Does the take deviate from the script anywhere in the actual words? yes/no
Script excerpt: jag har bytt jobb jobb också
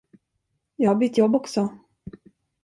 yes